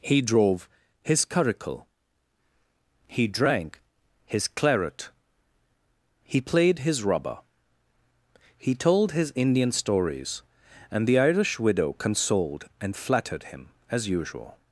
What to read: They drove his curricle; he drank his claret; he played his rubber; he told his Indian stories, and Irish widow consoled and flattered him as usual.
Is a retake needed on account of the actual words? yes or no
yes